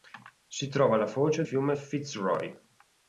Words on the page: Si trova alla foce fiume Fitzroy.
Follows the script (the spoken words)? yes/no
yes